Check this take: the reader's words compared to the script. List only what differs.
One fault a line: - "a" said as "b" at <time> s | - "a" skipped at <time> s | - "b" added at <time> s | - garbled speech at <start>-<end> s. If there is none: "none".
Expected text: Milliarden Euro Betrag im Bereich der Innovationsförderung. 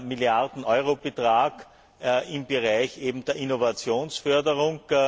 none